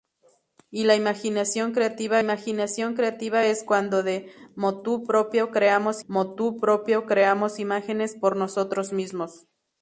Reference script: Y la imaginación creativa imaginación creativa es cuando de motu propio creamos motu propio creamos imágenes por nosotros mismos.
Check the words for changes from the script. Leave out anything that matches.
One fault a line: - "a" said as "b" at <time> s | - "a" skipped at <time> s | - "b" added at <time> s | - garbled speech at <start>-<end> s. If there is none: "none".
none